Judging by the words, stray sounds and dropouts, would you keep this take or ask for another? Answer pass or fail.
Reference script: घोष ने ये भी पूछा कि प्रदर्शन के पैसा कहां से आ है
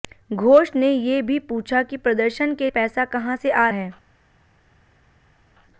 pass